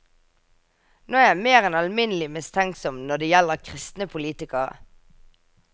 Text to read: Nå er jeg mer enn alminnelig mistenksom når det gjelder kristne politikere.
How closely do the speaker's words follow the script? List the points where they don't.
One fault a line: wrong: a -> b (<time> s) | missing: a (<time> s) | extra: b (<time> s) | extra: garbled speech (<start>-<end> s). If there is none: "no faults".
no faults